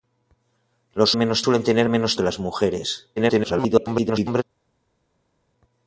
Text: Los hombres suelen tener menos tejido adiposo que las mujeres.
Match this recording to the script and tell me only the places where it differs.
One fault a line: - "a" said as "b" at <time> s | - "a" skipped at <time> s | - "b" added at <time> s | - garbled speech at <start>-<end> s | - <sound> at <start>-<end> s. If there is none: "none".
- "hombres" said as "menos" at 1.2 s
- "tejido adiposo" skipped at 2.2 s
- garbled speech at 3.2-4.4 s